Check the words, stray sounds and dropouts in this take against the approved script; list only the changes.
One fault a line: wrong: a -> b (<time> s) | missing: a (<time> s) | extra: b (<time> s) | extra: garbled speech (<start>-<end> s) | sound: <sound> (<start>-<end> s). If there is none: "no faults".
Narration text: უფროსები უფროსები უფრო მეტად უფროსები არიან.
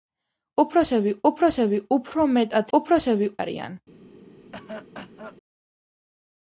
sound: cough (4.5-5.4 s)